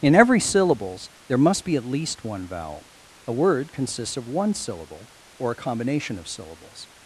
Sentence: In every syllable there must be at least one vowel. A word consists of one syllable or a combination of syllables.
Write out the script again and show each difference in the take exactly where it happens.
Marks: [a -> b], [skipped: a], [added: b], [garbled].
In every [syllable -> syllables] there must be at least one vowel. A word consists of one syllable or a combination of syllables.